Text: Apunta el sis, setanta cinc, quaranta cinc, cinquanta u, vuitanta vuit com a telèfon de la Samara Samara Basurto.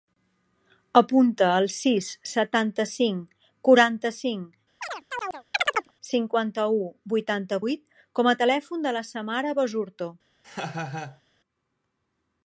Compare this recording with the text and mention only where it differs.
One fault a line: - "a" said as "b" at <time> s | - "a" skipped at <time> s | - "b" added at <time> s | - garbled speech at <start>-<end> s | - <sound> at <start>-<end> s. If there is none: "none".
- chirp at 4.8-5.9 s
- "Samara" skipped at 9.6 s
- laugh at 10.4-11.2 s